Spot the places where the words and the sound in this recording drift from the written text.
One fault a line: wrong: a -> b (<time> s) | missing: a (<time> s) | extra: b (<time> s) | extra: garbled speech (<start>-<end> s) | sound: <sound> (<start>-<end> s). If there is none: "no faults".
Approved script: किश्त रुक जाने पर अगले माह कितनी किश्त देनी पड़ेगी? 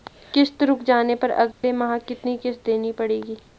sound: dropout (1.5-1.6 s)